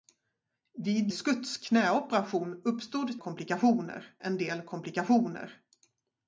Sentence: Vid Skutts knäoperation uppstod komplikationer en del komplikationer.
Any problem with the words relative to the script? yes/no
no